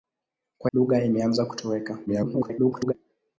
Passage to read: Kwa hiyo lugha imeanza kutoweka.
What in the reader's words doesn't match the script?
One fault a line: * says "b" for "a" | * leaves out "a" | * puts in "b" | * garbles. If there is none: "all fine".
* leaves out "hiyo"
* garbles